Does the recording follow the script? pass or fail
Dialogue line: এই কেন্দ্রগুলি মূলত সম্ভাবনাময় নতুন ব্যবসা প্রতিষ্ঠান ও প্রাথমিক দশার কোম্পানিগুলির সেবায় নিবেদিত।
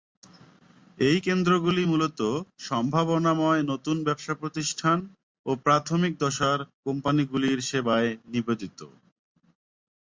pass